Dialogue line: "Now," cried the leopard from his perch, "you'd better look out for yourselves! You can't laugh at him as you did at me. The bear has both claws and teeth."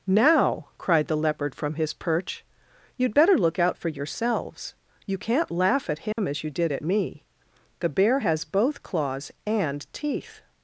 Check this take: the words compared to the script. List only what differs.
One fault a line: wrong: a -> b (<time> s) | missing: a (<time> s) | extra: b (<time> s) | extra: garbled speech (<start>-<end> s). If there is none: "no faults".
no faults